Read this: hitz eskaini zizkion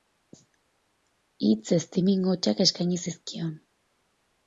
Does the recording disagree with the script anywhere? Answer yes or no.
yes